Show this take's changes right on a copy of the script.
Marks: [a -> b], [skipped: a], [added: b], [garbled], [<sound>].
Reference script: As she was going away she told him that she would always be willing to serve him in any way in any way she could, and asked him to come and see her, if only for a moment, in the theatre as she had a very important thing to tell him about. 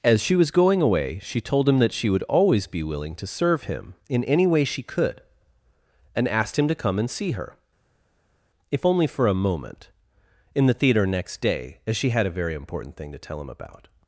As she was going away she told him that she would always be willing to serve him in any way [skipped: in any way] she could, and asked him to come and see her, if only for a moment, in the theatre [added: next day] as she had a very important thing to tell him about.